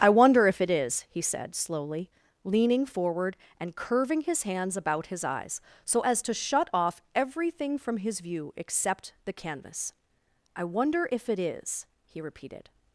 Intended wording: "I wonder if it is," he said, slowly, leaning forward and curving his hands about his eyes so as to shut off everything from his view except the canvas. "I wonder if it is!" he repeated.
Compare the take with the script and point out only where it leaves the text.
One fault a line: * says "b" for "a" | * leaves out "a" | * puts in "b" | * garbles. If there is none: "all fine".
all fine